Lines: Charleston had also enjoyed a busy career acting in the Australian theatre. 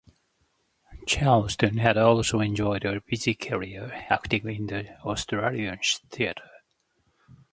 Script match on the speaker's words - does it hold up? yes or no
yes